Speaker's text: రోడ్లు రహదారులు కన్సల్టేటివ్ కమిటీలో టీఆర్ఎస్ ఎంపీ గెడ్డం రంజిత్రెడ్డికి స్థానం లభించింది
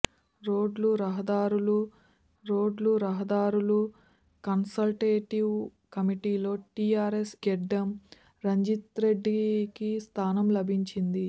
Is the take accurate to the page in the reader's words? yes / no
no